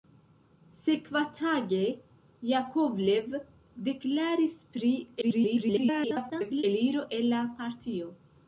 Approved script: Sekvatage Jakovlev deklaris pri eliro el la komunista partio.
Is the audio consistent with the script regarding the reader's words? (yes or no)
no